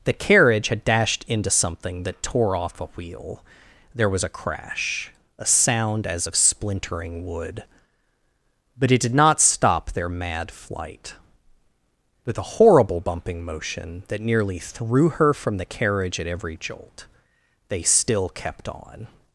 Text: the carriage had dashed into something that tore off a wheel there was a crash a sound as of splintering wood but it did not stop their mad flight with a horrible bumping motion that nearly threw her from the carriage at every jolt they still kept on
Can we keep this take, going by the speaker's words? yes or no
yes